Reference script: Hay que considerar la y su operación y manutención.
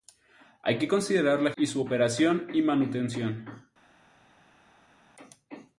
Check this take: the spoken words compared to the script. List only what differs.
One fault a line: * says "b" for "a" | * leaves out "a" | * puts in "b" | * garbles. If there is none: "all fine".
all fine